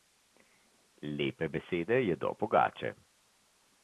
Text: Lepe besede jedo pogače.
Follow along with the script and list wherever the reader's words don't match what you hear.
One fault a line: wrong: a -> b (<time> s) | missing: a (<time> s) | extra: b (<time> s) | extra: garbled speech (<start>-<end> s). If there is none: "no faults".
no faults